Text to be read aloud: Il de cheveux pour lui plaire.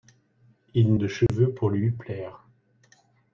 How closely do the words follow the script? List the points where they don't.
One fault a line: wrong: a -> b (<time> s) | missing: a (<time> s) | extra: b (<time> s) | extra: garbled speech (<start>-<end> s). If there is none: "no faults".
no faults